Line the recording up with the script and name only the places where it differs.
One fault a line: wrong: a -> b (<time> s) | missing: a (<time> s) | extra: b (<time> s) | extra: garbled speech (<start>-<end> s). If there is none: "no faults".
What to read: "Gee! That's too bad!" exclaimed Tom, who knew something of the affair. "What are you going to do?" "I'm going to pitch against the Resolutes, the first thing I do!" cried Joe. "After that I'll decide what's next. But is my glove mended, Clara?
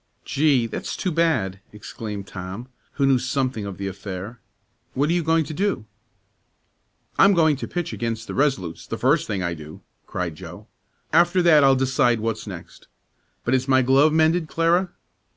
no faults